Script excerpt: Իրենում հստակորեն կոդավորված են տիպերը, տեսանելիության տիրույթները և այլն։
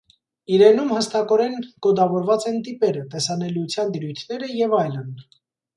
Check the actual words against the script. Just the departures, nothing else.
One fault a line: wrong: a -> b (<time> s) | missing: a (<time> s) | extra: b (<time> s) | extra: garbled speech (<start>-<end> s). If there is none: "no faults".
no faults